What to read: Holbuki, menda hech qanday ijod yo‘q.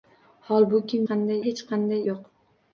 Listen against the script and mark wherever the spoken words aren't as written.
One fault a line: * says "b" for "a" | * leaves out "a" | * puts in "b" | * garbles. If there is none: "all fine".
* says "qanday" for "menda"
* leaves out "ijod"